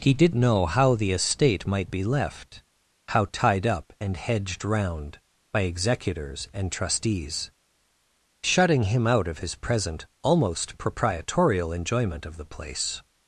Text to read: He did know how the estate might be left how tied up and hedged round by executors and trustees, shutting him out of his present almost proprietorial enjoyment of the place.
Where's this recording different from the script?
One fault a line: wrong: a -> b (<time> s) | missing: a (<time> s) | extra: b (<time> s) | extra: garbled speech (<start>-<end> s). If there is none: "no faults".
no faults